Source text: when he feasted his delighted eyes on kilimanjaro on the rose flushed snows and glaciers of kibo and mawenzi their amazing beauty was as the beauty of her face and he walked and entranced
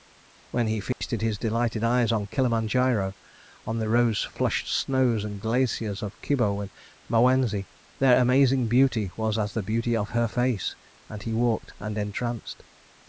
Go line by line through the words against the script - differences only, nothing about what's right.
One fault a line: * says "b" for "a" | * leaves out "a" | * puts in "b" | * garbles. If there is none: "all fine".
all fine